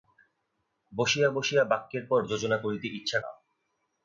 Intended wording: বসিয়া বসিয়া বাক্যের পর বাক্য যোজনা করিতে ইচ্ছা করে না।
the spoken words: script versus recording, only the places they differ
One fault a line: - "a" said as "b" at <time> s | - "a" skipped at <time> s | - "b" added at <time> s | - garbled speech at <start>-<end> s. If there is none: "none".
- "বাক্য" skipped at 2.2 s
- "করে" skipped at 3.2 s